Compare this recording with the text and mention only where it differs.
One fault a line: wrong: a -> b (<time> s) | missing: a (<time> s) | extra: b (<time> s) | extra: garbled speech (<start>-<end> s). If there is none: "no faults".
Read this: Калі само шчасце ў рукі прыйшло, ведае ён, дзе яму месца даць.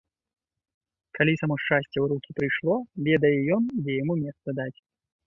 no faults